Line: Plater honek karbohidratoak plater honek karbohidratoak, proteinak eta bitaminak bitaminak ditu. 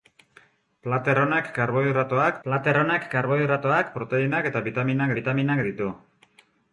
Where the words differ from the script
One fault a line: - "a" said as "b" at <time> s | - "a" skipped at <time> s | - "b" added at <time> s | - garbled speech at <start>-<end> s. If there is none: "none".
none